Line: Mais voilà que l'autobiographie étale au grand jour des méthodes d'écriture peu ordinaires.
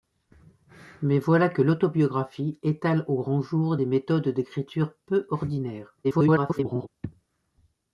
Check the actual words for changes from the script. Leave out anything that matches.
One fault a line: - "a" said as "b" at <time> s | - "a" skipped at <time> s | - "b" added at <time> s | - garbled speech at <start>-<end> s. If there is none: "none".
- garbled speech at 6.0-6.9 s